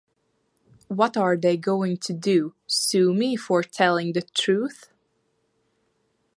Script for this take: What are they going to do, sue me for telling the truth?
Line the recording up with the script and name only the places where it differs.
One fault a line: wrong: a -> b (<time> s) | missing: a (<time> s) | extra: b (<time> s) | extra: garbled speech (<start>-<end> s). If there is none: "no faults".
no faults